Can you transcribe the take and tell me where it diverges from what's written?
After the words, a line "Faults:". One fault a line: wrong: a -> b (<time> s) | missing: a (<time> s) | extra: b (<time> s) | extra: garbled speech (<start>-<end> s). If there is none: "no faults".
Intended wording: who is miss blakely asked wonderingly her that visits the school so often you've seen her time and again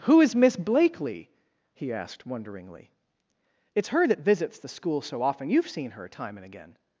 who is miss blakely he asked wonderingly it's her that visits the school so often you've seen her time and again
Faults:
extra: he (1.8 s)
extra: it's (3.8 s)